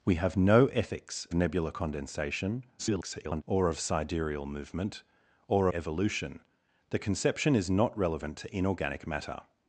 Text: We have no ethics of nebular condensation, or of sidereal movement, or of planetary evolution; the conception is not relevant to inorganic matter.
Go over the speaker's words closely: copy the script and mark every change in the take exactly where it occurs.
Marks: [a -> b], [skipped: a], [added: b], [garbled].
We have no ethics [skipped: of] nebular condensation, [garbled] or of sidereal movement, or [skipped: of planetary] evolution; the conception is not relevant to inorganic matter.